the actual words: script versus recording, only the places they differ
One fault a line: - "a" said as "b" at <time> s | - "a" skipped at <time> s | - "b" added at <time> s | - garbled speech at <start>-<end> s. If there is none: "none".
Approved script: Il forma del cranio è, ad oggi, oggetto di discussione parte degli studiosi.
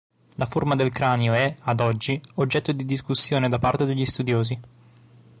- "Il" said as "La" at 0.3 s
- "da" added at 3.5 s